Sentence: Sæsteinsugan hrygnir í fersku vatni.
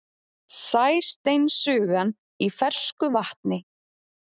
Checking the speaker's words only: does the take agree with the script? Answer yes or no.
no